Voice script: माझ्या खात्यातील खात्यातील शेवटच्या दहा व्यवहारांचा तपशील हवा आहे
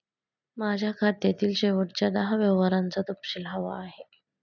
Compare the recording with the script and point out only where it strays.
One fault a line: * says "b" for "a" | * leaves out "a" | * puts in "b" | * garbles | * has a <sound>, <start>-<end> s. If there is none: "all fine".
* leaves out "खात्यातील"